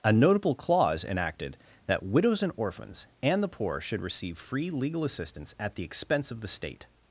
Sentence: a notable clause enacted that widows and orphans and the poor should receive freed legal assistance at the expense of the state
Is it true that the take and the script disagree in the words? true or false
true